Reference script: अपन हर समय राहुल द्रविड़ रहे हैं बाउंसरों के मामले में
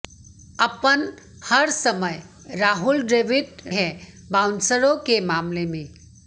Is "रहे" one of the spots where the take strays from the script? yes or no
yes